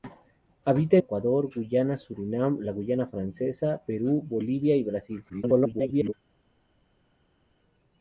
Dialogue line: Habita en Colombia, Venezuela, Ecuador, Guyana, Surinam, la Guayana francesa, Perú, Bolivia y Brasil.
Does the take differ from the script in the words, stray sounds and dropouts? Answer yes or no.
yes